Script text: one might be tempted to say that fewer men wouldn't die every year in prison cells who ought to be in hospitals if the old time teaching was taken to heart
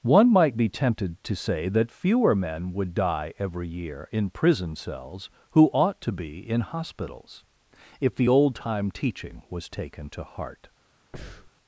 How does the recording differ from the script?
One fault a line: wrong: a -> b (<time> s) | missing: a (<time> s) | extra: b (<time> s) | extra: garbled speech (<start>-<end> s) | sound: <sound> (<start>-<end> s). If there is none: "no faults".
wrong: wouldn't -> would (2.7 s)
sound: breath (11.1-11.5 s)